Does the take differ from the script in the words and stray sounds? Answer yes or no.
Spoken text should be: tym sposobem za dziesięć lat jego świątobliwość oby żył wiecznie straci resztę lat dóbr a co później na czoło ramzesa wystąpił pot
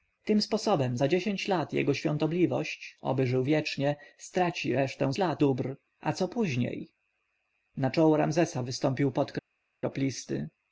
no